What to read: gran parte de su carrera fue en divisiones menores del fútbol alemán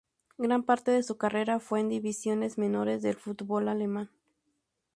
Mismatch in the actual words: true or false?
false